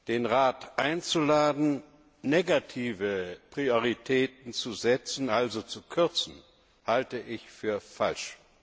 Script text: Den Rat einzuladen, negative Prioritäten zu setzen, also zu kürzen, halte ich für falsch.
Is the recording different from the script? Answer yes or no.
no